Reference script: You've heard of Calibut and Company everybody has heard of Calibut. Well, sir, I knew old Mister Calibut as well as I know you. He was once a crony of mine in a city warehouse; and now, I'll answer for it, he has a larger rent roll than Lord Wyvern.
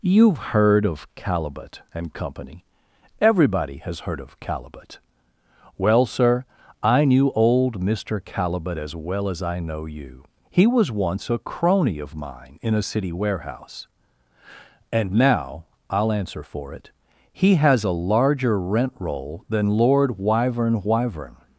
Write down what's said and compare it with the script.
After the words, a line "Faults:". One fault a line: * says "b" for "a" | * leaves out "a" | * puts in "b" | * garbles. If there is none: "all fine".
You've heard of Calibut and Company everybody has heard of Calibut. Well, sir, I knew old Mister Calibut as well as I know you. He was once a crony of mine in a city warehouse; and now, I'll answer for it, he has a larger rent roll than Lord Wyvern Wyvern.
Faults:
* puts in "Wyvern"